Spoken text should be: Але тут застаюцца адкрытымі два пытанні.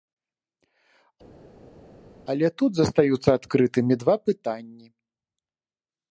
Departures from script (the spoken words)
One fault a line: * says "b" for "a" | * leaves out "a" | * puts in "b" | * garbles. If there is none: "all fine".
all fine